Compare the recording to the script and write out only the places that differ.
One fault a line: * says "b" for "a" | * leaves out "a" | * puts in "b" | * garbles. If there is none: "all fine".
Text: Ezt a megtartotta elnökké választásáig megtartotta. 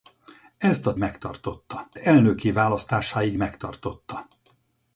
all fine